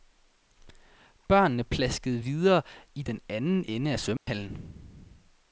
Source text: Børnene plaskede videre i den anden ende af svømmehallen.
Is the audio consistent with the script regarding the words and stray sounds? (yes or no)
no